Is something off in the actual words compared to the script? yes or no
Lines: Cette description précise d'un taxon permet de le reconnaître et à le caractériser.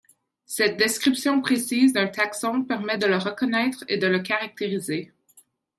yes